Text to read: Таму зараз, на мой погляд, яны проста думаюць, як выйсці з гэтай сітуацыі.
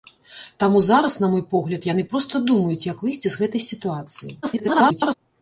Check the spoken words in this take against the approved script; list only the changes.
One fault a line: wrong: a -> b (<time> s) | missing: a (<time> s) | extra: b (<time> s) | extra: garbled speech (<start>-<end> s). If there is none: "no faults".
extra: garbled speech (4.4-5.1 s)